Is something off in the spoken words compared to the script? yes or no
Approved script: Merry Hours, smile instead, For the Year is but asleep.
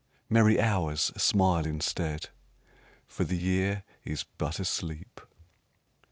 no